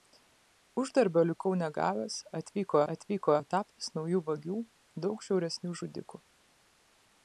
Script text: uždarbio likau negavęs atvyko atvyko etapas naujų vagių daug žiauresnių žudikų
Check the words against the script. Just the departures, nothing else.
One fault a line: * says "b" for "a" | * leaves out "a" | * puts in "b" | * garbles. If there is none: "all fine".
all fine